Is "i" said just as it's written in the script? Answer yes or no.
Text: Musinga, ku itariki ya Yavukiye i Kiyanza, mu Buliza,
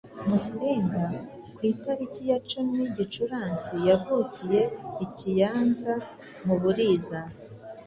yes